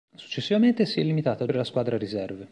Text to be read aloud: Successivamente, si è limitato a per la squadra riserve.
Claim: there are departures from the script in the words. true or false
false